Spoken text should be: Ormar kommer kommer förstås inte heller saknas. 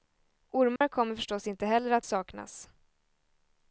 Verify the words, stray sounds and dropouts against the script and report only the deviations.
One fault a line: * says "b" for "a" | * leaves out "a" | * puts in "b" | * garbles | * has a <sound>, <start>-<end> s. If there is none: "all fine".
* has a dropout, 0.8-0.8 s
* leaves out "kommer"
* puts in "att"